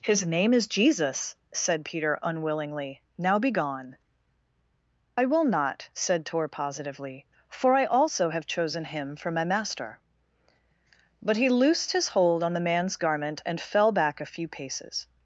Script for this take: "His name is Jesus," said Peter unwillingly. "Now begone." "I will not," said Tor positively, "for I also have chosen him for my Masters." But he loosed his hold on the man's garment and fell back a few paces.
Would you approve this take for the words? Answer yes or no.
no